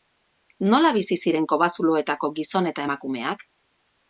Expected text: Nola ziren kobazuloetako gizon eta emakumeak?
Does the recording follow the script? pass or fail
fail